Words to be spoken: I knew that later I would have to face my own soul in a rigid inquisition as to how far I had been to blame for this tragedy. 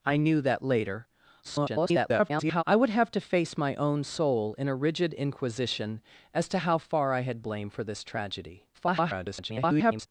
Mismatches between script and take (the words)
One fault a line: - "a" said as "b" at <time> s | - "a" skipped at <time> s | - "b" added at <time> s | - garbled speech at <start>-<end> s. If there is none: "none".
- garbled speech at 1.4-2.6 s
- "been to" skipped at 7.4 s
- garbled speech at 8.7-10.1 s